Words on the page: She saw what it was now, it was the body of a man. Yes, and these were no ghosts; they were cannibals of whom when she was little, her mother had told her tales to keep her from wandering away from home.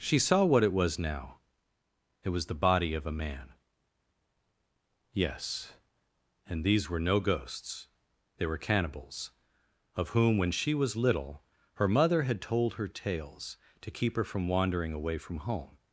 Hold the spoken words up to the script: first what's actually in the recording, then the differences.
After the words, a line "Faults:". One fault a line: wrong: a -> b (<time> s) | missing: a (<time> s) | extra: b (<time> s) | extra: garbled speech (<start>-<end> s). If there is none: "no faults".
She saw what it was now, it was the body of a man. Yes, and these were no ghosts; they were cannibals of whom when she was little, her mother had told her tales to keep her from wandering away from home.
Faults:
no faults